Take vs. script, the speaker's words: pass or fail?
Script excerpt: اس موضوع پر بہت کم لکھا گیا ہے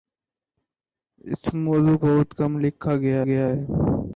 fail